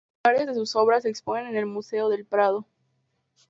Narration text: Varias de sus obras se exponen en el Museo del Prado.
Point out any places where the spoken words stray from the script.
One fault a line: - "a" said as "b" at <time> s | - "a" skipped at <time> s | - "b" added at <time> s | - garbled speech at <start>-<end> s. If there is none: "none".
none